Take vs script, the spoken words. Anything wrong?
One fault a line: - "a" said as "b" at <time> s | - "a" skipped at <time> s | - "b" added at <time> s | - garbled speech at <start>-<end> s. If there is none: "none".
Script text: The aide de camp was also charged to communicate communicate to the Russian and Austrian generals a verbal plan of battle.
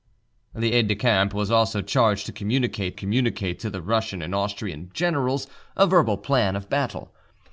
none